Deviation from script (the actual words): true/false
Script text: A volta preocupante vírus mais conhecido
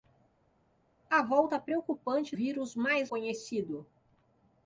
false